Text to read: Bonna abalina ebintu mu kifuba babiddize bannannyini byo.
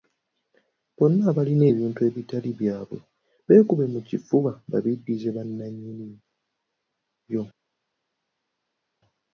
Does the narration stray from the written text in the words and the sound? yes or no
yes